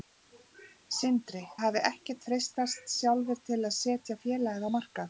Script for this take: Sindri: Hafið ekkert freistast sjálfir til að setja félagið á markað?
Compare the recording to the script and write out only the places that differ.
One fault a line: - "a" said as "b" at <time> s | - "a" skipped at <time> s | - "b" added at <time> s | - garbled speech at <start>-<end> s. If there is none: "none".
none